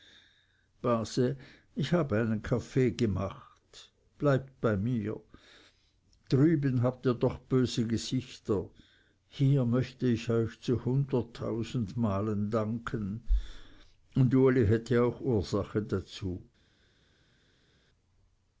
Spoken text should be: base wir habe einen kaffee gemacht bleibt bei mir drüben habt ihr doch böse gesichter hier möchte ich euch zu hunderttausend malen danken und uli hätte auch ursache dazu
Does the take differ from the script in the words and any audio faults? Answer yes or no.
yes